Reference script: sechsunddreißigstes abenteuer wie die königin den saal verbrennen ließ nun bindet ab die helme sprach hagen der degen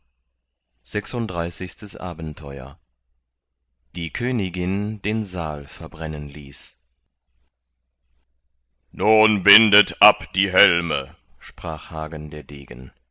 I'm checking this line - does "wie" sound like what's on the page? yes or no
no